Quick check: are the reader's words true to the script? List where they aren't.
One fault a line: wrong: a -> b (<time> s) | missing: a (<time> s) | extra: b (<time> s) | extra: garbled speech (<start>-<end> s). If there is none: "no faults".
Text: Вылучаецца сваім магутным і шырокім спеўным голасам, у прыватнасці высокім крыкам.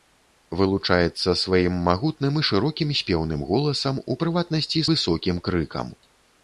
no faults